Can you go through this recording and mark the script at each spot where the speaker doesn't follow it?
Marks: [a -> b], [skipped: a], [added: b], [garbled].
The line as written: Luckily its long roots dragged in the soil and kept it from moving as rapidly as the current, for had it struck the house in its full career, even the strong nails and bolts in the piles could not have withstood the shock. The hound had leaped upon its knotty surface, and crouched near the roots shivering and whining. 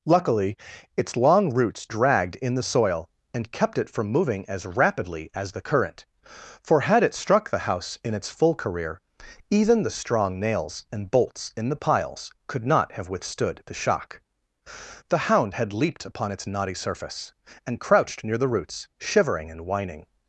Luckily its long roots dragged in the soil and kept it from moving as rapidly as the current, for had it struck the house in its full career, even the strong nails and bolts in the piles could not have withstood the shock. The hound had leaped upon its knotty surface, and crouched near the roots shivering and whining.